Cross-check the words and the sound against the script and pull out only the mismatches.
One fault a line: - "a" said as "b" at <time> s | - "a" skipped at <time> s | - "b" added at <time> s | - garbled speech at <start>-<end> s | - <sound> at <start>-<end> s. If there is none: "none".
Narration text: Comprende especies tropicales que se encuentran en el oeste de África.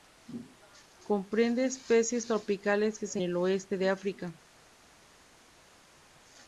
- "encuentran en" skipped at 3.2 s